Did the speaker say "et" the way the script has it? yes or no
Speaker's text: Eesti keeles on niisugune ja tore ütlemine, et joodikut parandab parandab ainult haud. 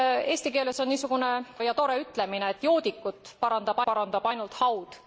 yes